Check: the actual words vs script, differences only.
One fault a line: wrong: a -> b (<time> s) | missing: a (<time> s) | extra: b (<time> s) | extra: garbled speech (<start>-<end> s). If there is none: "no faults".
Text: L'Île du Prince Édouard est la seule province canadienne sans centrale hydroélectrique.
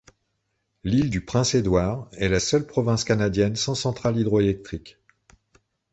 no faults